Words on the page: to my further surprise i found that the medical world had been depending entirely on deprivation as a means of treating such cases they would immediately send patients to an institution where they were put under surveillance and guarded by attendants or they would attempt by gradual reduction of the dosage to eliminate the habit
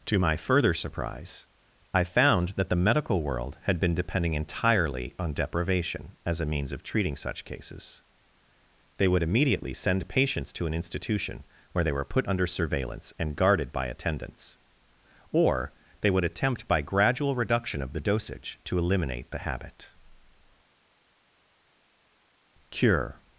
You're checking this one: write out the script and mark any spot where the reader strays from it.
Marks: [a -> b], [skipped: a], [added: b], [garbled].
to my further surprise i found that the medical world had been depending entirely on deprivation as a means of treating such cases they would immediately send patients to an institution where they were put under surveillance and guarded by attendants or they would attempt by gradual reduction of the dosage to eliminate the habit [added: cure]